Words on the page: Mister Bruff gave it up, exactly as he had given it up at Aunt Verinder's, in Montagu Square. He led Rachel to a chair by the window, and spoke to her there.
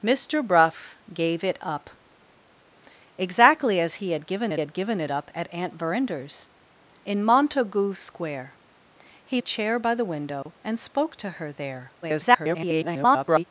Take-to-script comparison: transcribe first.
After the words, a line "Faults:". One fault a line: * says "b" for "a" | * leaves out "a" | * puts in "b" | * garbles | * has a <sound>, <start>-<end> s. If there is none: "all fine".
Mister Bruff gave it up, exactly as he had given it had given it up at Aunt Verinder's, in Montagu Square. He a chair by the window, and spoke to her there. [garbled]
Faults:
* puts in "had given it"
* leaves out "led Rachel to"
* has a dropout, 10.4-10.5 s
* garbles